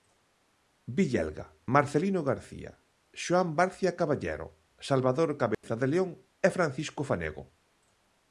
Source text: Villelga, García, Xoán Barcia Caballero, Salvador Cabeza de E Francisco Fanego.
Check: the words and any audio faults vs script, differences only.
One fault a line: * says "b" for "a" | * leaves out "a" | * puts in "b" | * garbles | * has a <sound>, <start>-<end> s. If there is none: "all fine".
* puts in "Marcelino"
* has a dropout, 5.5-5.6 s
* puts in "León"